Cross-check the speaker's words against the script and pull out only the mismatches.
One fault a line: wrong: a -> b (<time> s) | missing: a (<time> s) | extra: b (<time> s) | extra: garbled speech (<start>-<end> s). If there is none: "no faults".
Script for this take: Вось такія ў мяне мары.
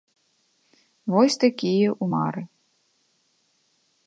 missing: мяне (2.1 s)